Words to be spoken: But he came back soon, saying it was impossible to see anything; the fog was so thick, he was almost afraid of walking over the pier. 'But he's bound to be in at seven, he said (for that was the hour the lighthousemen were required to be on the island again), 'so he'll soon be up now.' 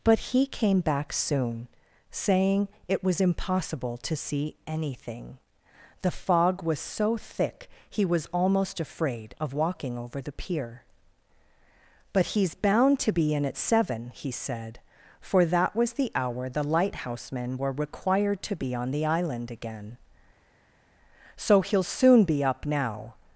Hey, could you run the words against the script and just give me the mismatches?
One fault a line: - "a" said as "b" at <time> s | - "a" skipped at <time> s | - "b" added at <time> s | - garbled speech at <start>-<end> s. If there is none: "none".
none